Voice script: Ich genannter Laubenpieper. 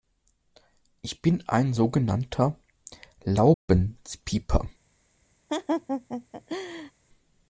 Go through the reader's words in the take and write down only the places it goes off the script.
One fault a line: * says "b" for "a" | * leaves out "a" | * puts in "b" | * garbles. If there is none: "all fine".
* puts in "bin ein so"